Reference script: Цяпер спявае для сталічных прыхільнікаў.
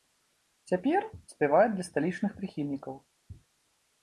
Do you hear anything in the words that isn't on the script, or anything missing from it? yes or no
no